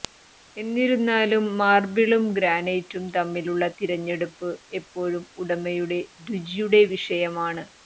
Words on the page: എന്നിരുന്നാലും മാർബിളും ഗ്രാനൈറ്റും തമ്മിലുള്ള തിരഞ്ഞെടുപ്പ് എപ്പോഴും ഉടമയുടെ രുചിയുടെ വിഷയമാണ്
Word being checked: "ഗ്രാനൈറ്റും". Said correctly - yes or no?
yes